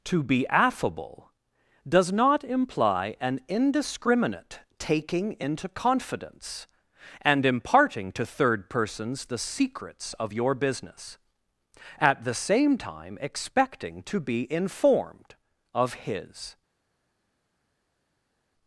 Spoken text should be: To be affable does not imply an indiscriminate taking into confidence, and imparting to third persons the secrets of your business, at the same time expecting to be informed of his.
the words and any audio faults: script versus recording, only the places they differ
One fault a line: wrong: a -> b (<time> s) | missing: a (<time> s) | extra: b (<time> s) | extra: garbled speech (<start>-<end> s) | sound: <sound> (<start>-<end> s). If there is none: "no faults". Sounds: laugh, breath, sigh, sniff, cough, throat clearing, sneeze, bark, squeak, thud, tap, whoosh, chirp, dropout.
no faults